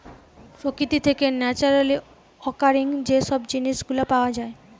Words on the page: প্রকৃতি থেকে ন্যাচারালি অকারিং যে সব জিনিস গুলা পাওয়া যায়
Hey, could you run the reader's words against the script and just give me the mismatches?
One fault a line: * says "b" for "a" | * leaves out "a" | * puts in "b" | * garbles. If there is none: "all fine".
all fine